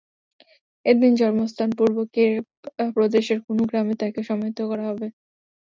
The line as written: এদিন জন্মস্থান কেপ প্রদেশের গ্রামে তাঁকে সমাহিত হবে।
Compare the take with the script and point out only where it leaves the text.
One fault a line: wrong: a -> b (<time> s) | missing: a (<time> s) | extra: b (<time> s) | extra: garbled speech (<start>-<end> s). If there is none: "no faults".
extra: পূর্ব (1.8 s)
extra: কুনু (3.4 s)
extra: করা (4.7 s)